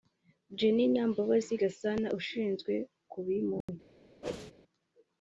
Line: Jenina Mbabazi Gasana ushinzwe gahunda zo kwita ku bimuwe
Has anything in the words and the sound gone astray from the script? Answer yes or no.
yes